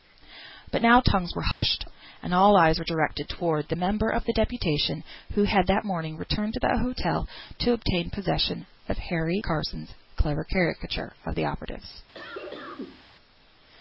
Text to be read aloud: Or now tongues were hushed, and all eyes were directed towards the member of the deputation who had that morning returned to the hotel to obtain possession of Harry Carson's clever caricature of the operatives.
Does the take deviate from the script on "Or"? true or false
true